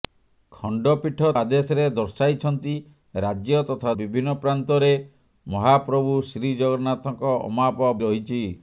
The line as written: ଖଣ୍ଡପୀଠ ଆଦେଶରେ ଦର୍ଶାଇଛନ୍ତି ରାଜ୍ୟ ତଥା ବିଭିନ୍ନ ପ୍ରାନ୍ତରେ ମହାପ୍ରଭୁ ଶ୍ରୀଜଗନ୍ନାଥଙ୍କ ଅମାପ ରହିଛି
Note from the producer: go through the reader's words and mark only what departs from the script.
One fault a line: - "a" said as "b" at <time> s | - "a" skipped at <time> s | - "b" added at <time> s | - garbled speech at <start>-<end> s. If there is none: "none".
none